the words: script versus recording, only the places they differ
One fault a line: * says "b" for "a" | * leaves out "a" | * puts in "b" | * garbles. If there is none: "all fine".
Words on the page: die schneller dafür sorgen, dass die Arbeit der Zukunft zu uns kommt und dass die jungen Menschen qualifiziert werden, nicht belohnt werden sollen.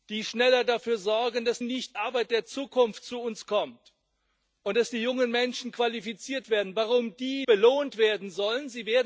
* says "nicht" for "die"
* leaves out "nicht"